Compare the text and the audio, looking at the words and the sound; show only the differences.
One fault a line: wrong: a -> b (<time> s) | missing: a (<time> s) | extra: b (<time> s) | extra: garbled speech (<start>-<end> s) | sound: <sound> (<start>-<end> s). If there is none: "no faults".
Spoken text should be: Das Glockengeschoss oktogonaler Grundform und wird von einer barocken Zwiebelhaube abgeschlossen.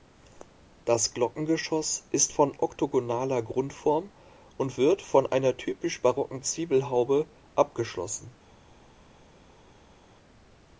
extra: ist von (2.1 s)
extra: typisch (5.6 s)